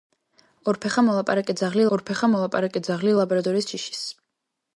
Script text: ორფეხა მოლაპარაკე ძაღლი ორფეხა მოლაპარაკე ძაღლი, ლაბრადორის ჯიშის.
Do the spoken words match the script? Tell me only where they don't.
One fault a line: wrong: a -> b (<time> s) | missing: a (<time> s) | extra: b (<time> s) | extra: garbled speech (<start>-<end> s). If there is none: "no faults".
no faults